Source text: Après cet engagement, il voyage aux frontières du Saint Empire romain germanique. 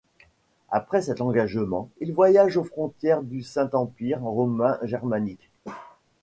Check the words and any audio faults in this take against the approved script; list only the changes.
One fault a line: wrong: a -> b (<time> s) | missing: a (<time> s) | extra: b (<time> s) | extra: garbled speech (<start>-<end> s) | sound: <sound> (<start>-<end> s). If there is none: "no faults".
sound: bark (5.6-6.0 s)